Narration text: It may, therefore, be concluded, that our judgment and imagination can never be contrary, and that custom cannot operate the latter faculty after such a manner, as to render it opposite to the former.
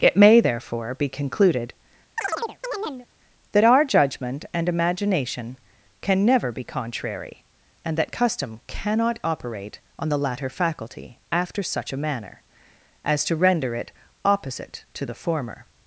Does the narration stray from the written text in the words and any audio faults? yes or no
yes